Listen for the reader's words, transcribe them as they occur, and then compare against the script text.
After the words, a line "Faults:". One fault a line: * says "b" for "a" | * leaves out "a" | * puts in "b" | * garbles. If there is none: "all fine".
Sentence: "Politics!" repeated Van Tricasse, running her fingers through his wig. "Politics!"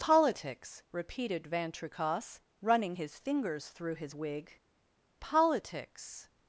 "Politics!" repeated Van Tricasse, running his fingers through his wig. "Politics!"
Faults:
* says "his" for "her"